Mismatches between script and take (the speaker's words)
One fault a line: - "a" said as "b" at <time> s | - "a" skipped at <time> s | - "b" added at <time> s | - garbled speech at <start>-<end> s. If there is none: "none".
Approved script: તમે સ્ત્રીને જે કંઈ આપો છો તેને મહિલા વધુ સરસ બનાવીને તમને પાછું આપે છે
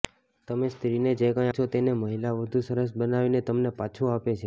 - "આપો" skipped at 1.5 s